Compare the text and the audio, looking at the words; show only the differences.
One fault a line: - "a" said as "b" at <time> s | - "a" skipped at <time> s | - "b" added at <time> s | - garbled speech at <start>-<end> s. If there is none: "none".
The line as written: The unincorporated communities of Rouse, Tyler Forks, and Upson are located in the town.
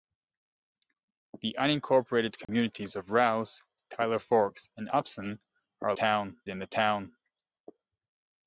- "located" said as "town" at 5.9 s